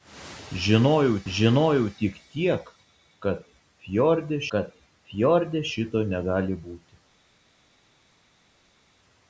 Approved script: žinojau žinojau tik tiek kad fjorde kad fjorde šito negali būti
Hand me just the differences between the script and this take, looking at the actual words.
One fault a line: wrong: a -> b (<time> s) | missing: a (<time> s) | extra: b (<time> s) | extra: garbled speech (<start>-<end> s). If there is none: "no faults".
no faults